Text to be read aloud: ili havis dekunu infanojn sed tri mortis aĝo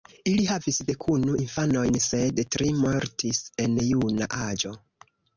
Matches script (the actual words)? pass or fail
fail